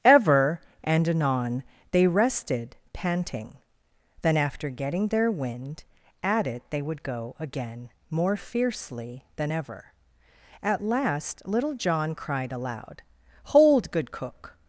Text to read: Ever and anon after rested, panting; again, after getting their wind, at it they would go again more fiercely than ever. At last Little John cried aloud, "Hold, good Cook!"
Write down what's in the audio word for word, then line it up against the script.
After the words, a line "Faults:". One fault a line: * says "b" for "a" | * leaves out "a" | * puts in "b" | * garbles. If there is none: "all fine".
Ever and anon they rested, panting; then, after getting their wind, at it they would go again more fiercely than ever. At last Little John cried aloud, "Hold, good Cook!"
Faults:
* says "they" for "after"
* says "then" for "again"